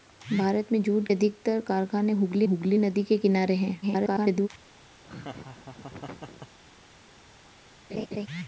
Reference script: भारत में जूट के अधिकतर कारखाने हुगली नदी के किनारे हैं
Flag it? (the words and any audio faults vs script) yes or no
yes